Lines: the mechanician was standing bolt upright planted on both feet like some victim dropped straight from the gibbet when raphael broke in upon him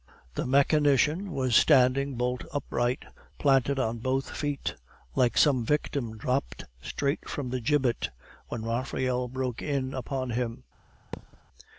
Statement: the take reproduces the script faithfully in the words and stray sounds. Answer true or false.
false